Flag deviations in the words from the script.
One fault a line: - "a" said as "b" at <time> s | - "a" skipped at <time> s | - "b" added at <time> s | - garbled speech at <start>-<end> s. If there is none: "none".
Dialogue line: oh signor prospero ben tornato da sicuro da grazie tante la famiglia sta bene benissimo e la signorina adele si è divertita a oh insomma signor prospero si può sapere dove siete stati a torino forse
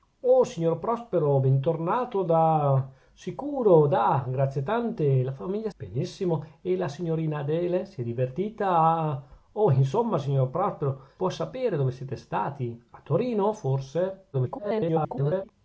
- "sta bene" skipped at 5.7 s
- "si" skipped at 11.1 s
- garbled speech at 14.3-15.5 s